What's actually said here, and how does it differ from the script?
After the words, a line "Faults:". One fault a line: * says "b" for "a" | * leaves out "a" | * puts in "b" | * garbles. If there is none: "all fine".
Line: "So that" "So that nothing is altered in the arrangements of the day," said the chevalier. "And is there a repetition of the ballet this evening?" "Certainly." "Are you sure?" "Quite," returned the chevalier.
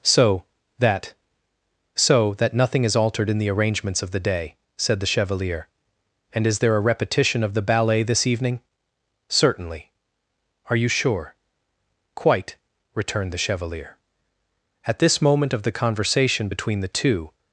"So that" "So that nothing is altered in the arrangements of the day," said the chevalier. "And is there a repetition of the ballet this evening?" "Certainly." "Are you sure?" "Quite," returned the chevalier. At this moment of the conversation between the two
Faults:
* puts in "At this moment of the conversation between the two"